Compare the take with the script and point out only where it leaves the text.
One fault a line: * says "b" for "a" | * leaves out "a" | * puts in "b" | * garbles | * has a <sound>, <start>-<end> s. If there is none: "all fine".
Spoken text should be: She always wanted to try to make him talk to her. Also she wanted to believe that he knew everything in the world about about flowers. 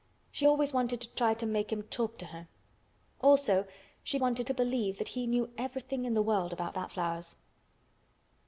all fine